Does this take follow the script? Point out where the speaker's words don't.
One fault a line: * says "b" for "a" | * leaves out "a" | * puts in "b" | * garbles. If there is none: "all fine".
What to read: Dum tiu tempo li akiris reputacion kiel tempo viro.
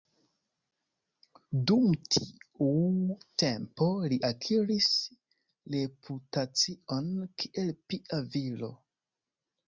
* says "pia" for "tempo"